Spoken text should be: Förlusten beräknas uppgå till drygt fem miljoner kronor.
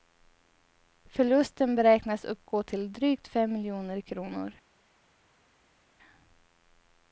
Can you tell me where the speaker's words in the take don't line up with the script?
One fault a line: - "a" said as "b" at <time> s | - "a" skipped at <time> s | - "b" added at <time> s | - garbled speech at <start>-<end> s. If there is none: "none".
none